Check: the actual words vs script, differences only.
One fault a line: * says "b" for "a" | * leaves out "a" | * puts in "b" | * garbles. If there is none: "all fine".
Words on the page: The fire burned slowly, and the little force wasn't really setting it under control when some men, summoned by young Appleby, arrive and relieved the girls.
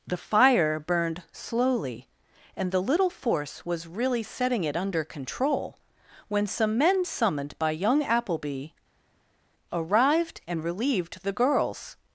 * says "was" for "wasn't"
* says "arrived" for "arrive"